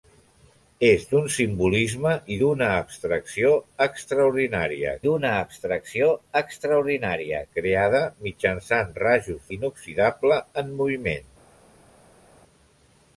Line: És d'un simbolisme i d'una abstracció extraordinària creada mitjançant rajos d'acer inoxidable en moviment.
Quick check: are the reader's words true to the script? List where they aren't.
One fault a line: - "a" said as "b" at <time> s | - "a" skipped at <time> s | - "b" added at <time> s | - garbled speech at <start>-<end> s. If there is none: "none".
- "d'una abstracció extraordinària" added at 5.1 s
- "d'acer" skipped at 9.5 s